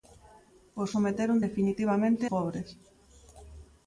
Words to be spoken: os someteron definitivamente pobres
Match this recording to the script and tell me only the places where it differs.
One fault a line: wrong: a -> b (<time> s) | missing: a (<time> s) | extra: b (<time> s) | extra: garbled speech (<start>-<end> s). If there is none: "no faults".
no faults